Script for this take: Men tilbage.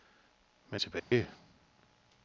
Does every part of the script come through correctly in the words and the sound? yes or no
no